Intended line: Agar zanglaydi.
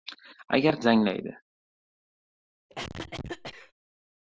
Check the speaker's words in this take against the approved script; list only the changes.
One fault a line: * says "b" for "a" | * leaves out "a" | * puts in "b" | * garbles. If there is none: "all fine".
all fine